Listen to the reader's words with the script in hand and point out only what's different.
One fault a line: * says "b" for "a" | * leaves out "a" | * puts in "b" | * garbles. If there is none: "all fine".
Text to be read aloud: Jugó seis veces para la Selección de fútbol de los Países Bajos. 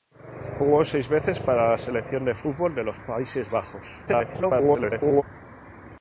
* garbles